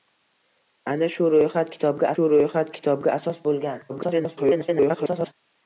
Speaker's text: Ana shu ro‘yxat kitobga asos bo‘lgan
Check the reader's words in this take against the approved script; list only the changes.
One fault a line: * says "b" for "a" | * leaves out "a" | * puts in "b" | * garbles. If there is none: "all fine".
* puts in "shu ro‘yxat kitobga"
* garbles